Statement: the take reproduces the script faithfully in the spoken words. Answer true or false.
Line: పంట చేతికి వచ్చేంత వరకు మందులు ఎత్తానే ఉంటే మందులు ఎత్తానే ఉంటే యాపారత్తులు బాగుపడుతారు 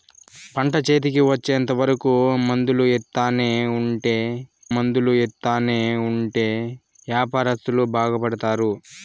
true